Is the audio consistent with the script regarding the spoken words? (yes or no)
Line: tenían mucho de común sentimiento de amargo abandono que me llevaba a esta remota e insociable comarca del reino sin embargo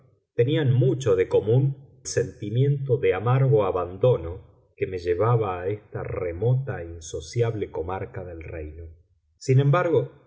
yes